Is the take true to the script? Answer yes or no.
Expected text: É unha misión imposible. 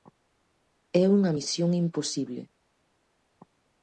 yes